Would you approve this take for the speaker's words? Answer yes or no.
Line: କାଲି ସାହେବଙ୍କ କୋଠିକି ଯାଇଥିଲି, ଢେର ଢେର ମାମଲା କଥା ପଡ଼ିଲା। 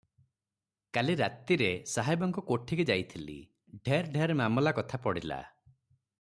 no